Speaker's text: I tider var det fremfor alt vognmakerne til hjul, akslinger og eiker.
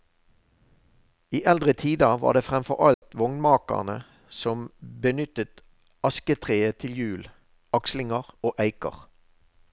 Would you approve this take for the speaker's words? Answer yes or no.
no